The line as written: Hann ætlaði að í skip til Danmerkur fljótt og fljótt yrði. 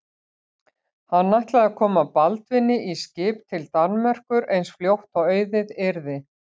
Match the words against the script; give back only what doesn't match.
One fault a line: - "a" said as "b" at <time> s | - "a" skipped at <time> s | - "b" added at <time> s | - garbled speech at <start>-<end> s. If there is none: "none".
- "koma Baldvini" added at 1.8 s
- "eins" added at 4.6 s
- "fljótt" said as "auðið" at 5.4 s